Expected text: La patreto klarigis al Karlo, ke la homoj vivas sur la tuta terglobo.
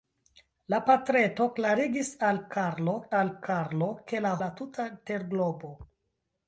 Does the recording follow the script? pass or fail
fail